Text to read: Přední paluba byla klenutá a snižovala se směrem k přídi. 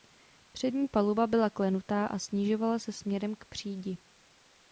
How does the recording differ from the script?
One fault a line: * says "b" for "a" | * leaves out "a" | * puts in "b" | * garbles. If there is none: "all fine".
all fine